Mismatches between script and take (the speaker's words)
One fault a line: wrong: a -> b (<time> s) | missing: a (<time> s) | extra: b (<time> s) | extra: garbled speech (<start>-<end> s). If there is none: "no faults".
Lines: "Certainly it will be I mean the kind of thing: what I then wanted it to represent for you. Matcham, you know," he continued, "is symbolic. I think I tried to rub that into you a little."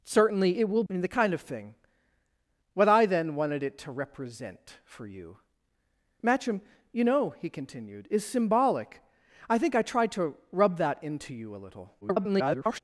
missing: be (0.8 s)
extra: garbled speech (12.0-12.8 s)